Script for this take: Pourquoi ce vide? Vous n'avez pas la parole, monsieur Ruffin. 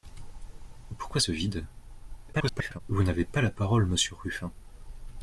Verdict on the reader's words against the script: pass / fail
fail